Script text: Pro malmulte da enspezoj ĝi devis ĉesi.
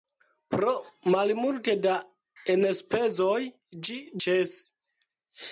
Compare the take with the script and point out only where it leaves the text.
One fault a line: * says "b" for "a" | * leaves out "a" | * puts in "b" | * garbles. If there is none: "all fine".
* leaves out "devis"